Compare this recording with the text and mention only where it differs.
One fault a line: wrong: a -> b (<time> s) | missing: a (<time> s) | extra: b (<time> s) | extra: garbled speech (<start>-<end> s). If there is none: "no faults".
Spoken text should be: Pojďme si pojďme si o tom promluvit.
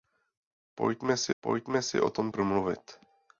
no faults